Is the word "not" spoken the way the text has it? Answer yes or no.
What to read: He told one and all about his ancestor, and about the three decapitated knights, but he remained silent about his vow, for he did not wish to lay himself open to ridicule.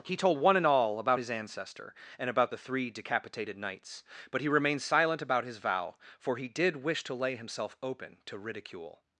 no